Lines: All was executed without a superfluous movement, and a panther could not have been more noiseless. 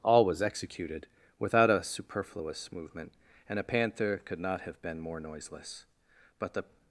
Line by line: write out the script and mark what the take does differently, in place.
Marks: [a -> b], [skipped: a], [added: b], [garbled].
All was executed without a superfluous movement, and a panther could not have been more noiseless. [added: But the]